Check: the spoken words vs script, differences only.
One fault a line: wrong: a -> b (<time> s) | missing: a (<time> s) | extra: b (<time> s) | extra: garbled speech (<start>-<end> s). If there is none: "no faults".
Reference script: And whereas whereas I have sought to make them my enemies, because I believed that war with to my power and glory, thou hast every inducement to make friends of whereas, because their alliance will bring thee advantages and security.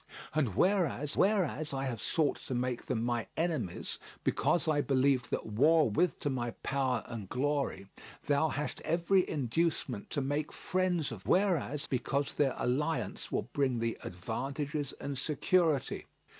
no faults